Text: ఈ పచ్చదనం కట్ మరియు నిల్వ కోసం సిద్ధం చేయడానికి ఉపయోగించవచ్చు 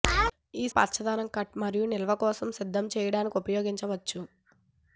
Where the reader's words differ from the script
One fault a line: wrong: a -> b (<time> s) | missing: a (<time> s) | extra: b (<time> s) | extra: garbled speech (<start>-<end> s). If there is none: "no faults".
no faults